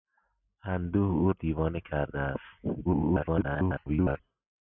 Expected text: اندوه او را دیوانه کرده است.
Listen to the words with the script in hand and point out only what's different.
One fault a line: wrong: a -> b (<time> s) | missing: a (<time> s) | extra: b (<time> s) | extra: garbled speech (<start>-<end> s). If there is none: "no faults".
missing: را (1.3 s)
extra: garbled speech (2.8-4.2 s)